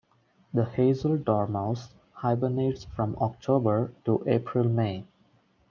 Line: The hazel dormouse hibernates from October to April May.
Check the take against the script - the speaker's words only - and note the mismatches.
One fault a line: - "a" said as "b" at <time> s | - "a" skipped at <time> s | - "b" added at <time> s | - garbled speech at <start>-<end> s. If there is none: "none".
none